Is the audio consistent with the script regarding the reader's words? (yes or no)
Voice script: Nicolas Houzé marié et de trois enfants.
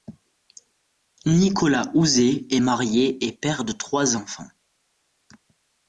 no